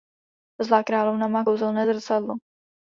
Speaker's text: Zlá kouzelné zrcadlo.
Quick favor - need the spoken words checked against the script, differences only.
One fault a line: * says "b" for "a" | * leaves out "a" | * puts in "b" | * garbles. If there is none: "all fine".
* puts in "královna má"